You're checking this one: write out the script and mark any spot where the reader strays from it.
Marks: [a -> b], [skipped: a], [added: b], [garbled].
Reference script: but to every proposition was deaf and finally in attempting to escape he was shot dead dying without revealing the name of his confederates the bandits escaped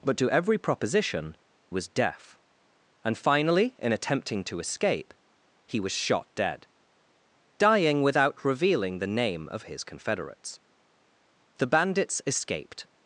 but to every proposition was deaf and finally in attempting to escape he was shot dead dying without revealing the name of his confederates the bandits escaped